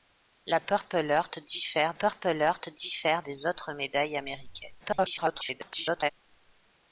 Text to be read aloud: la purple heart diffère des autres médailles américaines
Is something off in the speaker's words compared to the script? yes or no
yes